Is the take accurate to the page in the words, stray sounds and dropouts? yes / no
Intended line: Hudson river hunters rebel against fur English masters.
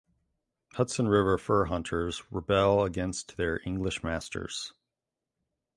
no